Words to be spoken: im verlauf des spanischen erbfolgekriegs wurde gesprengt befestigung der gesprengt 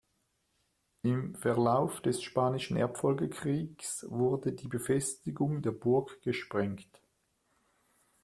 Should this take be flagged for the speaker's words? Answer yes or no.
yes